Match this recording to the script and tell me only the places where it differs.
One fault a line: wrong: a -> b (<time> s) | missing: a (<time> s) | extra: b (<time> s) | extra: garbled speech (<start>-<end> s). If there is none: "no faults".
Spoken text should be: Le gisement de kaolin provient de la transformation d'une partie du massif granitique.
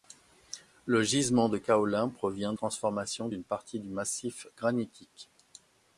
missing: de la (2.5 s)